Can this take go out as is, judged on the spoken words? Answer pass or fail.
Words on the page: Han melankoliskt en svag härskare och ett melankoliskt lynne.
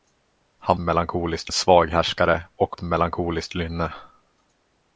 pass